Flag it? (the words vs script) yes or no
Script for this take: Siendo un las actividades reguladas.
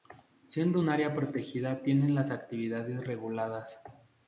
yes